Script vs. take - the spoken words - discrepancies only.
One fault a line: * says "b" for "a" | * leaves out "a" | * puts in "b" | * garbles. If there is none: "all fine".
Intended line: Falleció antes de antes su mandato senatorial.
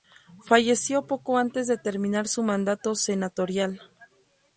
* puts in "poco"
* says "terminar" for "antes"